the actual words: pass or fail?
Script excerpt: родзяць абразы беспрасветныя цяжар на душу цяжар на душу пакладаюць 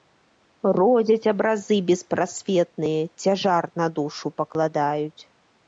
fail